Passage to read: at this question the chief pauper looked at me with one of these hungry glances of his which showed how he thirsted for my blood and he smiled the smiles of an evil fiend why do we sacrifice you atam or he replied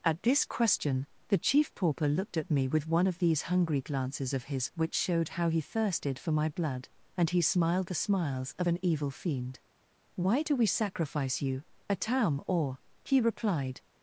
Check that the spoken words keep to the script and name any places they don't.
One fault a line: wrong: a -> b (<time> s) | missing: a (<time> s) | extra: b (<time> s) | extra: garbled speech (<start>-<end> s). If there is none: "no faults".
no faults